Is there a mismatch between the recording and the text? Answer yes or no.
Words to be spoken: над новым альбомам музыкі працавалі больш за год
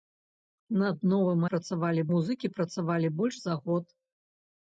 yes